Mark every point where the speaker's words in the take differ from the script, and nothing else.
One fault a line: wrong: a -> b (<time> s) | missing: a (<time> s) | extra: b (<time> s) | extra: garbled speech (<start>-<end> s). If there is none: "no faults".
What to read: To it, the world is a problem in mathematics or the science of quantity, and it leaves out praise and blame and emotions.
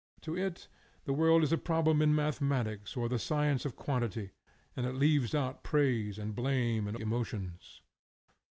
no faults